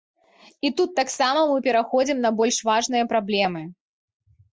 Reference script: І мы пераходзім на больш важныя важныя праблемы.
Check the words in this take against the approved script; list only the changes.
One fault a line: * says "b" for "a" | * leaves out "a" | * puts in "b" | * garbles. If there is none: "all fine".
* puts in "тут таксама"
* leaves out "важныя"